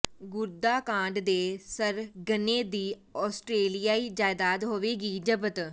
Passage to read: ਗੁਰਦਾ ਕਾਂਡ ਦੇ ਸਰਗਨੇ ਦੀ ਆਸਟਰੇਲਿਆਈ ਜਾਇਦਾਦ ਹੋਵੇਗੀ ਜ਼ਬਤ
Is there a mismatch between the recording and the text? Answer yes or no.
no